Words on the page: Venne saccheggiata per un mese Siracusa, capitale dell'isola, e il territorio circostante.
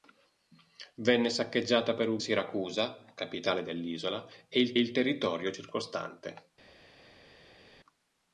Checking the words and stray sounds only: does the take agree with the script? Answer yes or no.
no